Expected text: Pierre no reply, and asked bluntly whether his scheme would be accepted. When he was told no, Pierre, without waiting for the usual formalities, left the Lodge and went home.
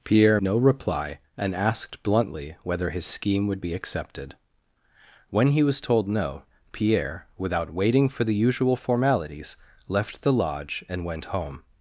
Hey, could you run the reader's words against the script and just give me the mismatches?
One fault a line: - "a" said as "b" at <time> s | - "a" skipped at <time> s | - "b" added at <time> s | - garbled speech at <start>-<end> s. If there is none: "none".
none